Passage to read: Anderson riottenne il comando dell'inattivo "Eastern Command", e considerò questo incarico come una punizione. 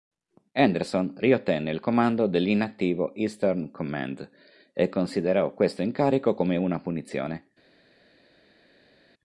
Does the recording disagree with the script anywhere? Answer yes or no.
no